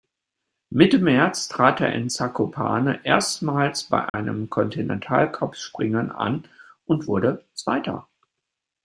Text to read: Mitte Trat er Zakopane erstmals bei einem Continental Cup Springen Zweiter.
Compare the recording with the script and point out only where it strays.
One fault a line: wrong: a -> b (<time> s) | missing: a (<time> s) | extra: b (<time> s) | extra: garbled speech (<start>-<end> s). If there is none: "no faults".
extra: März (1.0 s)
extra: in (1.9 s)
extra: an und wurde (6.1 s)